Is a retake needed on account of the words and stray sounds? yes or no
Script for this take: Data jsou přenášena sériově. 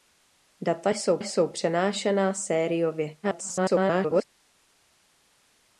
yes